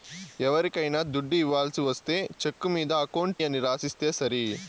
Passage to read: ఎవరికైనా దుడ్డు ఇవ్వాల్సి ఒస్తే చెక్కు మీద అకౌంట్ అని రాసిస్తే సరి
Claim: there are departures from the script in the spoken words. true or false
false